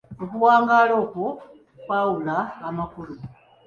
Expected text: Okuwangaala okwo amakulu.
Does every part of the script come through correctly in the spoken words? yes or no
no